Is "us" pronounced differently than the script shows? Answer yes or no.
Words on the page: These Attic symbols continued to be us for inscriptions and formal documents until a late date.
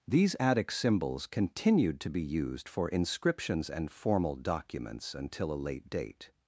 yes